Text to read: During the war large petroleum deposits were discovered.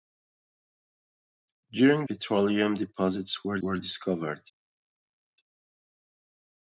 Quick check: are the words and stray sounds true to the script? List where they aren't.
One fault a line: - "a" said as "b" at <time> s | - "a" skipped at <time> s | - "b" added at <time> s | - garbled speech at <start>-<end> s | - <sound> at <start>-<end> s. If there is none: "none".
- "the war large" skipped at 2.1 s
- "were" added at 3.6 s